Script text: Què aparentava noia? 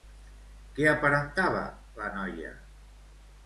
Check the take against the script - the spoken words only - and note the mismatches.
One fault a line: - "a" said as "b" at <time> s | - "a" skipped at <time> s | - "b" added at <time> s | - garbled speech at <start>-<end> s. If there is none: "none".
- "la" added at 2.0 s